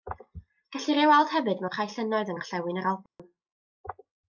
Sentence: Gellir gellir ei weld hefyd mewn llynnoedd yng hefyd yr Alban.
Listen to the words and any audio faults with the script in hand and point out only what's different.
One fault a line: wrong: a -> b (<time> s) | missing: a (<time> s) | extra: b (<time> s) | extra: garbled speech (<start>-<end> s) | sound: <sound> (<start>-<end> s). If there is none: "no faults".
missing: gellir (1.0 s)
extra: rhai (1.8 s)
wrong: hefyd -> ngorllewin (2.4 s)
sound: dropout (3.1-3.2 s)